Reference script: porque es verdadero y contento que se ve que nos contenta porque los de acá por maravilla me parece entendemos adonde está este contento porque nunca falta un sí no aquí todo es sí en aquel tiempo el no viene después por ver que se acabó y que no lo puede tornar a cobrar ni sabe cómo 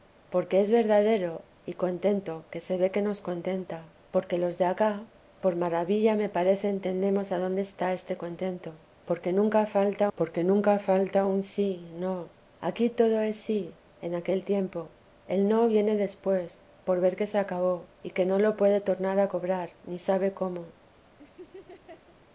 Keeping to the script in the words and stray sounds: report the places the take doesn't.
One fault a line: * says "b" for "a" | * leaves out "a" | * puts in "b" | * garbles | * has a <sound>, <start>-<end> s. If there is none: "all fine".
* puts in "porque nunca falta"
* has a laugh, 21.2-22.2 s